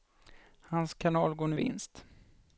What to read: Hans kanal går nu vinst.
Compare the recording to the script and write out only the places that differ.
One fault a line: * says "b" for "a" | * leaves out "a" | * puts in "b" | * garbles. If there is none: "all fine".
all fine